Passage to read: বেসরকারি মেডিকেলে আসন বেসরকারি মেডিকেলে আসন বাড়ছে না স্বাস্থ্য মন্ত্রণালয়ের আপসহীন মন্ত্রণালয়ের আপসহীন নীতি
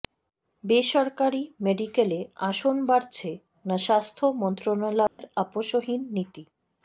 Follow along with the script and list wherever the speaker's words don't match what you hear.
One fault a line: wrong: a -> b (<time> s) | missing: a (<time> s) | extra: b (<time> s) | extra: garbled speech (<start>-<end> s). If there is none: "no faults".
missing: বেসরকারি মেডিকেলে আসন (2.7 s)
missing: মন্ত্রণালয়ের আপসহীন (6.0 s)